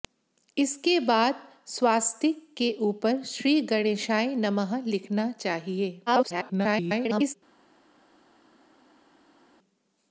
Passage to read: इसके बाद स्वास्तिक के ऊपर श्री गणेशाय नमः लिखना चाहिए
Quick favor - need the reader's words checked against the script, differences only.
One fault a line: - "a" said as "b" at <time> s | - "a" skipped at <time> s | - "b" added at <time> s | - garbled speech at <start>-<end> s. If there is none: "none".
- garbled speech at 6.1-7.3 s